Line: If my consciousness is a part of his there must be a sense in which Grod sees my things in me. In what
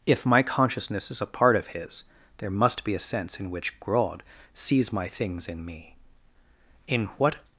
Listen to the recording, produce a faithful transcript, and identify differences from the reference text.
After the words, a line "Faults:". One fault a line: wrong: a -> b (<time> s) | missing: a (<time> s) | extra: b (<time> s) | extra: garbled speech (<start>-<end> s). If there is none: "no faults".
If my consciousness is a part of his there must be a sense in which Grod sees my things in me. In what
Faults:
no faults